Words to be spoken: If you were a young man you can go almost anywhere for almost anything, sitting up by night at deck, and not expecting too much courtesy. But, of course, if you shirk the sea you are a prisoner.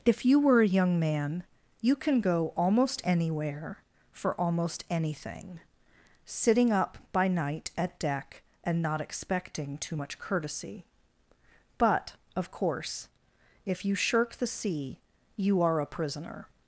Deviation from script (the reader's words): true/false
false